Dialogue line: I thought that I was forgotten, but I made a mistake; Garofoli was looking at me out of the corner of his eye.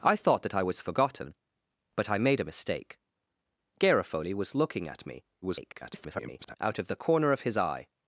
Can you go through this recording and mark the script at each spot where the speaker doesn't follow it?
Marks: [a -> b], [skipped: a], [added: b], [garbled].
I thought that I was forgotten, but I made a mistake; Garofoli was looking at me [garbled] out of the corner of his eye.